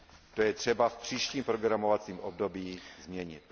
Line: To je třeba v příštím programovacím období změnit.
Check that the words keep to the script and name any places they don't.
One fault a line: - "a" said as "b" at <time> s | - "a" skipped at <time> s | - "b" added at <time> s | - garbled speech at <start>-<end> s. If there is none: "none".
none